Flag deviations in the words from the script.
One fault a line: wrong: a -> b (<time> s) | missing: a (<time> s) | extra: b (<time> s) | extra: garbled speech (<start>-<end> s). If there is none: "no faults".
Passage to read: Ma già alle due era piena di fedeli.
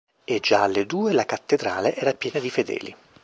wrong: Ma -> E (0.2 s)
extra: la Cattedrale (1.1 s)